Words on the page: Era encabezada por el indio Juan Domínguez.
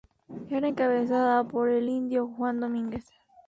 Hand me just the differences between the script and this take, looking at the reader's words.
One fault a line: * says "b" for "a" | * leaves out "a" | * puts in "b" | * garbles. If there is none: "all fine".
all fine